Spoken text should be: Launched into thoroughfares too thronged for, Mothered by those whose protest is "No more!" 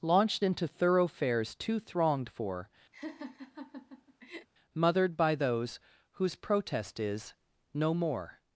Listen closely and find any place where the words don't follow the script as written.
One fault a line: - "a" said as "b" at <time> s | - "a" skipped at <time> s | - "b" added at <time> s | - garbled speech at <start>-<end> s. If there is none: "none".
none